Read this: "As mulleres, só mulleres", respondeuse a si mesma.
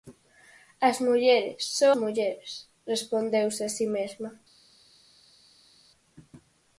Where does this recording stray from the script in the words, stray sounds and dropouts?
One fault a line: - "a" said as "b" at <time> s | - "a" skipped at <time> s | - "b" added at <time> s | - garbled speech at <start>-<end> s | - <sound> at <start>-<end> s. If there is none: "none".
none